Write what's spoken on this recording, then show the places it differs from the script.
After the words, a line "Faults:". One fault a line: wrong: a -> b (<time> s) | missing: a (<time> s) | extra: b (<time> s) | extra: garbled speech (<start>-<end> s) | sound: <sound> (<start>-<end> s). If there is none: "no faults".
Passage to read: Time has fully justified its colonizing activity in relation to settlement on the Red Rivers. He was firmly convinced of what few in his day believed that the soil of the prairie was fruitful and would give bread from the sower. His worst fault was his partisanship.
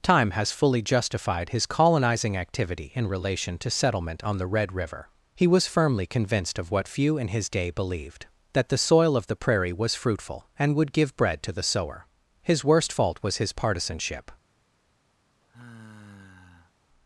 Time has fully justified his colonizing activity in relation to settlement on the Red River. He was firmly convinced of what few in his day believed that the soil of the prairie was fruitful and would give bread to the sower. His worst fault was his partisanship.
Faults:
wrong: its -> his (1.5 s)
wrong: Rivers -> River (4.7 s)
wrong: from -> to (11.4 s)
sound: sigh (15.4-16.7 s)